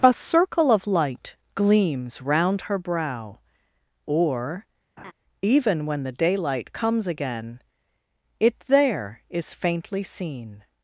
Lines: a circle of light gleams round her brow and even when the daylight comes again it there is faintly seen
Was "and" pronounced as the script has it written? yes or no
no